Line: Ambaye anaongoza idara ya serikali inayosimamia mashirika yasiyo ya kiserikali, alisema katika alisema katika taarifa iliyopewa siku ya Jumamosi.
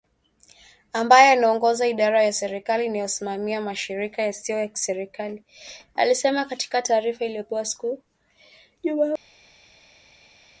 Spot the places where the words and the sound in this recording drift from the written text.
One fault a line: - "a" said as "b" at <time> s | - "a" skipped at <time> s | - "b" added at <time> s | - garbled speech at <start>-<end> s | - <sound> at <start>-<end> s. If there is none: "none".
- "alisema katika" skipped at 6.8 s